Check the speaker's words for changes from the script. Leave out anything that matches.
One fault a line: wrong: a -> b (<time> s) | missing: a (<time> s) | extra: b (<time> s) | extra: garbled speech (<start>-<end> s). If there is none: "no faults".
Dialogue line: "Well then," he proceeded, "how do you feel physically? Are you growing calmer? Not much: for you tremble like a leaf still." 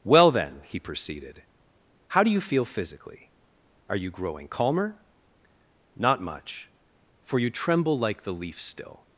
wrong: a -> the (8.2 s)